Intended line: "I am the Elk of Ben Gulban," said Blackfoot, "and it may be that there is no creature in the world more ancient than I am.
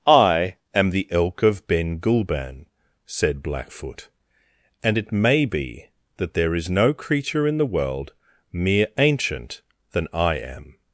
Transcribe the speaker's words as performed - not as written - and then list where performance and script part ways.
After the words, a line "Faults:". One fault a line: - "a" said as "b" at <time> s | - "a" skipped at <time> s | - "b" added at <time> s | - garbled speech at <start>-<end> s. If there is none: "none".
"I am the Elk of Ben Gulban," said Blackfoot, "and it may be that there is no creature in the world mere ancient than I am.
Faults:
- "more" said as "mere" at 8.5 s